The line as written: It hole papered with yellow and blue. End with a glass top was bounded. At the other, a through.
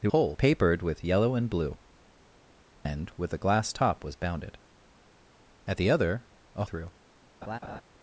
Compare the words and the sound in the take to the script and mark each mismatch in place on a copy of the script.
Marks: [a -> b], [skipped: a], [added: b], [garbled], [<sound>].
It hole papered with yellow and blue. End with a glass top was bounded. At the other, a through. [laugh]